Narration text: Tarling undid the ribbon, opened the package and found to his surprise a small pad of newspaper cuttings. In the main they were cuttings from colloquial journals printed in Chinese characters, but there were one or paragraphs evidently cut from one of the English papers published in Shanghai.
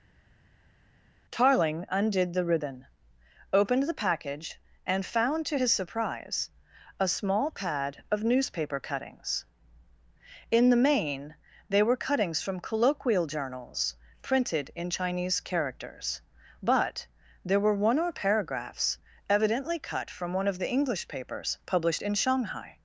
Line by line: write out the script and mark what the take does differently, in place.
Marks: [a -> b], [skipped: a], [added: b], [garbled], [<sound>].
Tarling undid the ribbon, opened the package and found to his surprise a small pad of newspaper cuttings. In the main they were cuttings from colloquial journals printed in Chinese characters, but there were one or paragraphs evidently cut from one of the English papers published in Shanghai.